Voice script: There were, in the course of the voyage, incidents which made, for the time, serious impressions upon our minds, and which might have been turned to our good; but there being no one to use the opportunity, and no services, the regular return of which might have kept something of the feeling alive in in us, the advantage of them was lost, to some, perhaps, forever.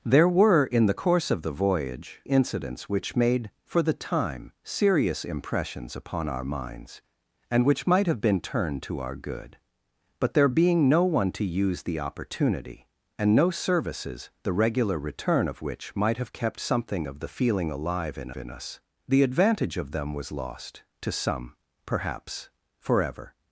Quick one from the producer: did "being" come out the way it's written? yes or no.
yes